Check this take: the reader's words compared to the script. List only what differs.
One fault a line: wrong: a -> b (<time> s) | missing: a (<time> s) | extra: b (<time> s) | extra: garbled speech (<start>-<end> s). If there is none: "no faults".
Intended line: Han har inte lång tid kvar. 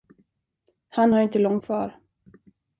missing: tid (1.6 s)